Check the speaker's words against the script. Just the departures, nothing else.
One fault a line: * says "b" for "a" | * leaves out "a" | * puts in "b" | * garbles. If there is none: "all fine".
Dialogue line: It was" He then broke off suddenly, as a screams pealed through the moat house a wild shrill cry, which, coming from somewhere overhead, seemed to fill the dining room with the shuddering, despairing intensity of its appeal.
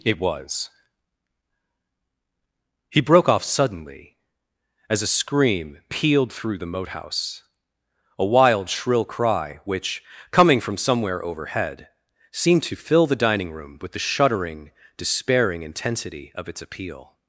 * leaves out "then"
* says "scream" for "screams"